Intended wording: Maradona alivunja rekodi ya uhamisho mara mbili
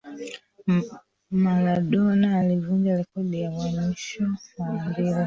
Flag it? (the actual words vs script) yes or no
no